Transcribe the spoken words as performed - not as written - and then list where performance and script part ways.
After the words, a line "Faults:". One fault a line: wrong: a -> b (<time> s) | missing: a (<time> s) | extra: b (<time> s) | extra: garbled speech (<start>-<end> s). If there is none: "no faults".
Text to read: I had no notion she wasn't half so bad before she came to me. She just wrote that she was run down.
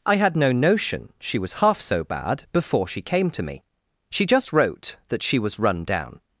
I had no notion she was half so bad before she came to me. She just wrote that she was run down.
Faults:
wrong: wasn't -> was (1.4 s)